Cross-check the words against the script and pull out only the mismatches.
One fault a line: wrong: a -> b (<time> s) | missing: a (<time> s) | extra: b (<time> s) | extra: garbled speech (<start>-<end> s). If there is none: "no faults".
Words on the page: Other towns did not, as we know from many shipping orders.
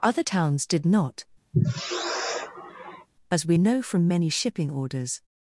no faults